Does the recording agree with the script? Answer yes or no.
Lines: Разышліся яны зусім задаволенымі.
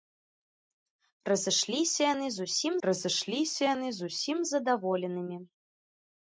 no